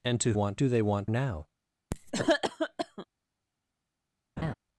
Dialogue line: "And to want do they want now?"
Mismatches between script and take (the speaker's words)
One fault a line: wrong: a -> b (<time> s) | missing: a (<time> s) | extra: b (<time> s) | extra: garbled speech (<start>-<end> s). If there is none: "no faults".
no faults